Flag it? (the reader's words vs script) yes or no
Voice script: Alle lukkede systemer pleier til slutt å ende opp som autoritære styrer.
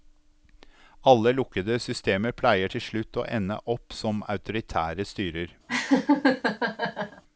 no